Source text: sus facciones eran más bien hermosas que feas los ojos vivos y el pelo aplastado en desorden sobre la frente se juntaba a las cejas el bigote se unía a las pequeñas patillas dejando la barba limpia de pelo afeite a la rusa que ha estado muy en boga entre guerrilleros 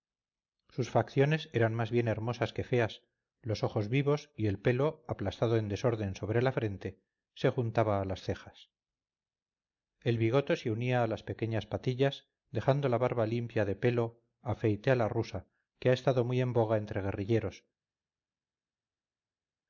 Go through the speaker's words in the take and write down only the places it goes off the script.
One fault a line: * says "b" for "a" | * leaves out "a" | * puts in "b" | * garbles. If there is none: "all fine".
all fine